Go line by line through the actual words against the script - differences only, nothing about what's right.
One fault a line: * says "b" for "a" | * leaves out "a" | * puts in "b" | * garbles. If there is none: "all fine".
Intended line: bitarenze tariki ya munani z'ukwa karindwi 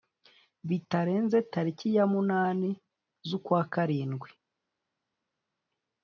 all fine